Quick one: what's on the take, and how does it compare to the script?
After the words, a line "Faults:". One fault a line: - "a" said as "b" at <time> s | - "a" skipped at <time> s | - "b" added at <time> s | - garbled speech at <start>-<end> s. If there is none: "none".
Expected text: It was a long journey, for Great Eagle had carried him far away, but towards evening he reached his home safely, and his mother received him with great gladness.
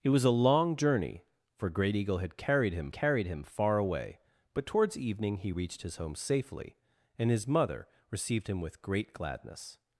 It was a long journey, for Great Eagle had carried him carried him far away, but towards evening he reached his home safely, and his mother received him with great gladness.
Faults:
- "carried him" added at 2.9 s